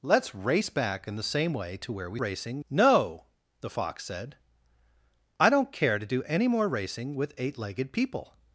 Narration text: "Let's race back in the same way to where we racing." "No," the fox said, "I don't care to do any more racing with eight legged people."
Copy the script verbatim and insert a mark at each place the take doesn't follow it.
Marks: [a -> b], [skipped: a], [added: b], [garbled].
"Let's race back in the same way to where we racing." "No," the fox said, "I don't care to do any more racing with eight legged people."